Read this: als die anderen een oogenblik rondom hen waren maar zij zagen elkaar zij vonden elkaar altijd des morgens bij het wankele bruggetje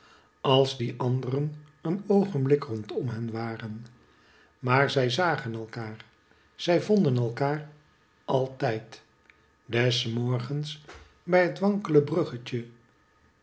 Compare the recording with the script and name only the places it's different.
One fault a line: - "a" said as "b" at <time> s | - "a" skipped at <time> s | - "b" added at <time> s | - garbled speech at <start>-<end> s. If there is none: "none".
none